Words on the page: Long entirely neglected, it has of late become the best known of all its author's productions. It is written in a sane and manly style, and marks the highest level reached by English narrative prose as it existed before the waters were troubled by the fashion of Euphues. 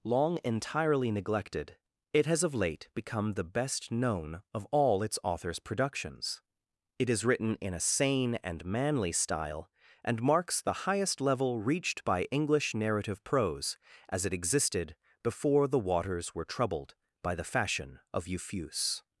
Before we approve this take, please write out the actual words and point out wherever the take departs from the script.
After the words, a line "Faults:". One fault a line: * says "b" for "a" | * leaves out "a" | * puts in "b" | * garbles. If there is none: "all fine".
Long entirely neglected, it has of late become the best known of all its author's productions. It is written in a sane and manly style, and marks the highest level reached by English narrative prose as it existed before the waters were troubled by the fashion of Euphues.
Faults:
all fine